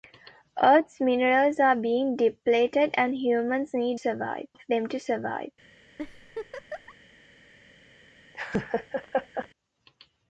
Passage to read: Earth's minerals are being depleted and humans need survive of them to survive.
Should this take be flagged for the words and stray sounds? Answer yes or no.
yes